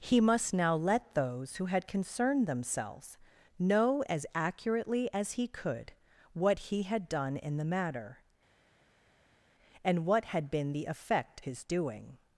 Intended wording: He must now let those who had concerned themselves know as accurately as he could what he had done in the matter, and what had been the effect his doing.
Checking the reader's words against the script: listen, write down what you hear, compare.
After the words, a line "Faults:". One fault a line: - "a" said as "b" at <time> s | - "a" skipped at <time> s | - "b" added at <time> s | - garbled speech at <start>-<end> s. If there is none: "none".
He must now let those who had concerned themselves know as accurately as he could what he had done in the matter, and what had been the effect his doing.
Faults:
none